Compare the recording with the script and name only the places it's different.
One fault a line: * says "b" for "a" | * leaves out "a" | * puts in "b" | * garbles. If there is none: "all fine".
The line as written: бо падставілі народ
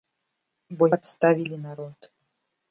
all fine